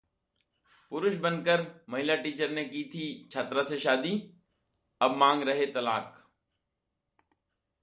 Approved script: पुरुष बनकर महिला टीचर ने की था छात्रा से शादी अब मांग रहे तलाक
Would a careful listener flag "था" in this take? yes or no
yes